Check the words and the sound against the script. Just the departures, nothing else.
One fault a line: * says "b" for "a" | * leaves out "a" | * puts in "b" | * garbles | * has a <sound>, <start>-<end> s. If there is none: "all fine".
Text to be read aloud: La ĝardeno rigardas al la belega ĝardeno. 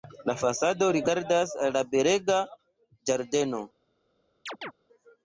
* says "fasado" for "ĝardeno"
* has a chirp, 4.5-4.7 s